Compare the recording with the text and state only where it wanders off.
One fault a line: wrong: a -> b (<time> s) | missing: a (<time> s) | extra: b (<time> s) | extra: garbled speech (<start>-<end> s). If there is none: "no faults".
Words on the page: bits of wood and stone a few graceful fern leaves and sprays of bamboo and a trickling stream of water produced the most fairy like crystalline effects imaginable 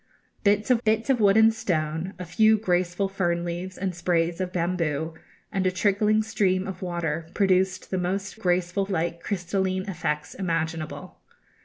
extra: bits of (0.8 s)
wrong: fairy -> graceful (8.3 s)